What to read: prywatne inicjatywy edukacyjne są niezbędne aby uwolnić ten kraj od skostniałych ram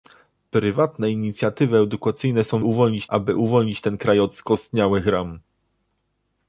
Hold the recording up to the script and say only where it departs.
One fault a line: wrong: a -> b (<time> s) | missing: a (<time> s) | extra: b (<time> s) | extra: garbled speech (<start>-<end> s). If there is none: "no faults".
wrong: niezbędne -> uwolnić (2.6 s)